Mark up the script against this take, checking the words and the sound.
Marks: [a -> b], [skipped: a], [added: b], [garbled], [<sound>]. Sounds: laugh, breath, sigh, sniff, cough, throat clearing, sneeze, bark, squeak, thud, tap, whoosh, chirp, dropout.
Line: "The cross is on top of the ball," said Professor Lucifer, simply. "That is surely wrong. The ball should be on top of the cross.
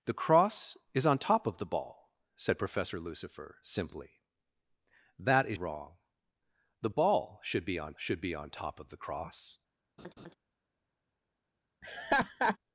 "The cross is on top of the ball," said Professor Lucifer, simply. "That is [skipped: surely] wrong. The ball should be on [added: should be on] top of the cross. [laugh] [laugh]